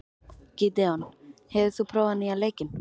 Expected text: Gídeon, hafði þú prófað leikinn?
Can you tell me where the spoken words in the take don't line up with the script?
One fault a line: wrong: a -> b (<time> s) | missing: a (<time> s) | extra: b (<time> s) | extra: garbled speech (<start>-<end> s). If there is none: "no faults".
wrong: hafði -> hefur (1.5 s)
extra: nýja (2.2 s)